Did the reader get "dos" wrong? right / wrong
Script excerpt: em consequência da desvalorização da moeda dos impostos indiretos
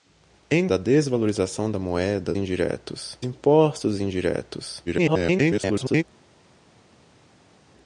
wrong